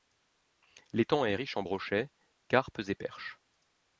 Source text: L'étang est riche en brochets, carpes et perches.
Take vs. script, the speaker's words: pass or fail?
pass